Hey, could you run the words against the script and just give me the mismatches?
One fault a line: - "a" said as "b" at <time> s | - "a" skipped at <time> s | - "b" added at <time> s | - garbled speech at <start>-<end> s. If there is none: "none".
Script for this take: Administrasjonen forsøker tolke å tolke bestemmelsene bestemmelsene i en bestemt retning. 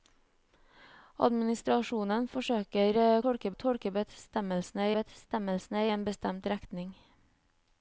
none